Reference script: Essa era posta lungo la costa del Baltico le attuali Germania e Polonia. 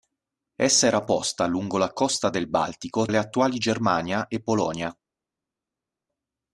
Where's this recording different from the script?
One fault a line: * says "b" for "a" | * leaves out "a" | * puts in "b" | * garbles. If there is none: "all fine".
all fine